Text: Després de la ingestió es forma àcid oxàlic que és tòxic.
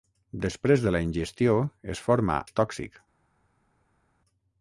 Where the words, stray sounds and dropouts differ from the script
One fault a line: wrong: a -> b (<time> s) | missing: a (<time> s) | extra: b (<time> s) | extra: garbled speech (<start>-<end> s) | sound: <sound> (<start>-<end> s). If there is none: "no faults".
missing: àcid oxàlic que (2.4 s)